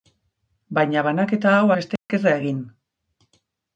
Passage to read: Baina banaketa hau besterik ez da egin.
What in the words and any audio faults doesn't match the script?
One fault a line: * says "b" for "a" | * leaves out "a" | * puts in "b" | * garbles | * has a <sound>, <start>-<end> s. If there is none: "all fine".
* has a dropout, 2.0-2.1 s